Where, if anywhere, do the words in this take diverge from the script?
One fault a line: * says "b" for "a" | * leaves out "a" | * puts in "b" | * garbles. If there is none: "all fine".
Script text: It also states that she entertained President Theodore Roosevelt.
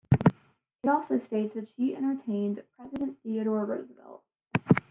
all fine